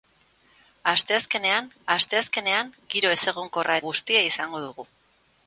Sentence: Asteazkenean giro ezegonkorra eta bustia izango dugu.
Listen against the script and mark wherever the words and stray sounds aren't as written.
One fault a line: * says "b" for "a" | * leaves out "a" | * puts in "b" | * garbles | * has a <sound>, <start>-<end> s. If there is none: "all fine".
* puts in "asteazkenean"
* leaves out "eta"